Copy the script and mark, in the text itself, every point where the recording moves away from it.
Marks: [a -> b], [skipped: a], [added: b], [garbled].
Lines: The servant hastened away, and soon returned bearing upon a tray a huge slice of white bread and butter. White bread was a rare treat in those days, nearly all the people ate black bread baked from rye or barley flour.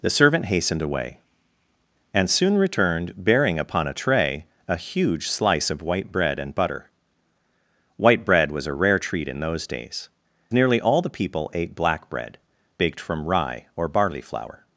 The servant hastened away, and soon returned bearing upon a tray a huge slice of white bread and butter. White bread was a rare treat in those days, nearly all the people ate black bread baked from rye or barley flour.